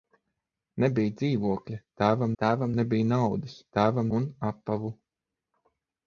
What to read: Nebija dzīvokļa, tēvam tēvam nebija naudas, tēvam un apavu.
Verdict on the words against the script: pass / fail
pass